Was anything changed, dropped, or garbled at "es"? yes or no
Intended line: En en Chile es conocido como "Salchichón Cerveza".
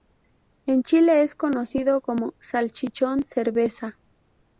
no